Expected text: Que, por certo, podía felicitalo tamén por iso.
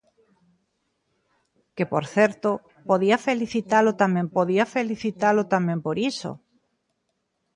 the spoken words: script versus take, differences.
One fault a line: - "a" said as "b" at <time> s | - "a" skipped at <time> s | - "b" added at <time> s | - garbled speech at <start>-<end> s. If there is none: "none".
- "podía felicitalo tamén" added at 4.4 s